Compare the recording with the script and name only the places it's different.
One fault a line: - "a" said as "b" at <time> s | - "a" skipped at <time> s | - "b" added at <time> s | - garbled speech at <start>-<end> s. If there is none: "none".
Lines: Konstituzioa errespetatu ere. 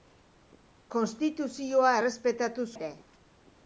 none